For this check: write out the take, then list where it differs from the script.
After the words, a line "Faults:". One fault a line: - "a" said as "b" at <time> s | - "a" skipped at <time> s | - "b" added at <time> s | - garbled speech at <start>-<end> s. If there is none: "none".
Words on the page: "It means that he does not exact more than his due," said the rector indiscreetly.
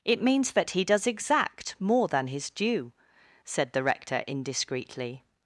"It means that he does exact more than his due," said the rector indiscreetly.
Faults:
- "not" skipped at 1.1 s